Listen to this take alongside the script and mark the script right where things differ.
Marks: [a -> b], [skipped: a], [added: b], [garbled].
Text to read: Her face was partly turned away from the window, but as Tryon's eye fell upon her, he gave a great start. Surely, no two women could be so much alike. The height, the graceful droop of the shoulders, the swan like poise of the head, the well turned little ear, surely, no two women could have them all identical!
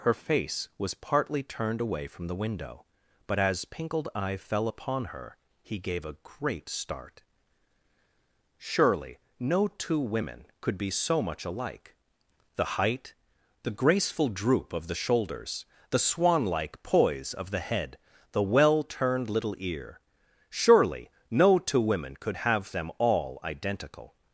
Her face was partly turned away from the window, but as [Tryon's -> Pinkled] eye fell upon her, he gave a great start. Surely, no two women could be so much alike. The height, the graceful droop of the shoulders, the swan like poise of the head, the well turned little ear, surely, no two women could have them all identical!